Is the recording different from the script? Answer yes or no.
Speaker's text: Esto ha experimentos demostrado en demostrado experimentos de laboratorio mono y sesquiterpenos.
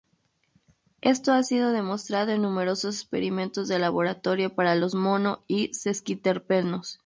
yes